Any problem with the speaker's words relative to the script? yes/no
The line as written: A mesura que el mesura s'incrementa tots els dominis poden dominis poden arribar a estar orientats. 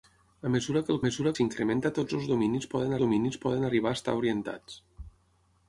no